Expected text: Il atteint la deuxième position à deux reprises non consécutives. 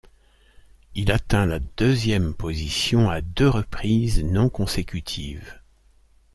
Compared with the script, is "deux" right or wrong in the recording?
right